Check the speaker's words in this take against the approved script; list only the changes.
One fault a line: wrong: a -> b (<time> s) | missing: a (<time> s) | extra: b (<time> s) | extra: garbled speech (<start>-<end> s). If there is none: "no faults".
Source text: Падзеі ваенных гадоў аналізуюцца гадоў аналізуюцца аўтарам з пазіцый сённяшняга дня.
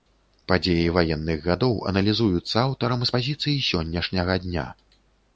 missing: гадоў аналізуюцца (2.5 s)